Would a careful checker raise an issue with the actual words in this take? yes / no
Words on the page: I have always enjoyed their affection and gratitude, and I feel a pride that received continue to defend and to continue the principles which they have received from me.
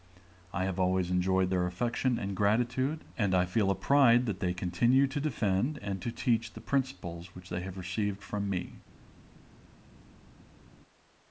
yes